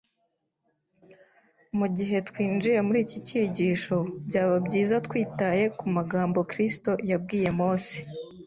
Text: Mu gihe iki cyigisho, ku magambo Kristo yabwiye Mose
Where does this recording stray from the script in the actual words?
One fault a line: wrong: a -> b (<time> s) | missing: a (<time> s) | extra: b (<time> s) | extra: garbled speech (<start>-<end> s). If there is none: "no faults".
extra: twinjiye muri (2.3 s)
extra: byaba byiza twitaye (4.3 s)